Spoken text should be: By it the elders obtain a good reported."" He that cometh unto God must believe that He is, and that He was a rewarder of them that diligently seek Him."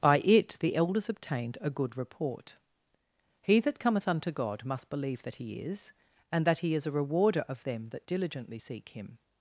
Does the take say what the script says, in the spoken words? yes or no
no